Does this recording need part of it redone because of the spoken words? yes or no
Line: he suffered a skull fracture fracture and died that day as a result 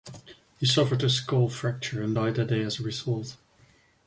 yes